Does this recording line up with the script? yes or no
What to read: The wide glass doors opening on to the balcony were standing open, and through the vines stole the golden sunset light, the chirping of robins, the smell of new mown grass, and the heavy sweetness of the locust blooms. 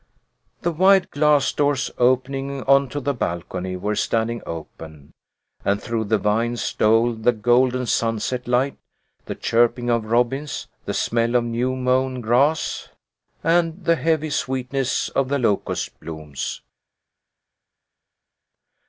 yes